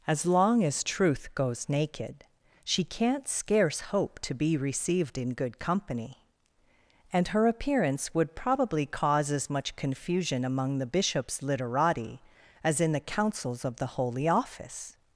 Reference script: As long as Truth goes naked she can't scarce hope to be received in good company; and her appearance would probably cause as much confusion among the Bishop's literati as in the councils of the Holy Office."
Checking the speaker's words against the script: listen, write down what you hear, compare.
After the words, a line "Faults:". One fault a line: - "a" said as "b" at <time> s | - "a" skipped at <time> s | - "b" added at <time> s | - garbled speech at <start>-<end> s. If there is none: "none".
As long as Truth goes naked she can't scarce hope to be received in good company; and her appearance would probably cause as much confusion among the Bishop's literati as in the councils of the Holy Office."
Faults:
none